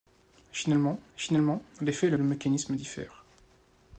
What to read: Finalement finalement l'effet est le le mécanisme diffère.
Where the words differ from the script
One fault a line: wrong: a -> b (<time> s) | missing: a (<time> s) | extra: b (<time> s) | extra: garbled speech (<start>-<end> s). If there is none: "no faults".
no faults